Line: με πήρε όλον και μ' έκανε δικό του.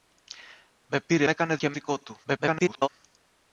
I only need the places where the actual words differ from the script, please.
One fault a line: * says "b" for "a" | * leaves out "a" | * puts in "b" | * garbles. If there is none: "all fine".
* says "έκανε" for "όλον"
* leaves out "έκανε"
* garbles